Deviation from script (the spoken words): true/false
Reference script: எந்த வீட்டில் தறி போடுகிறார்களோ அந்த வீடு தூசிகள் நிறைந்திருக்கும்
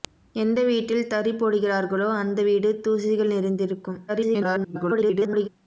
true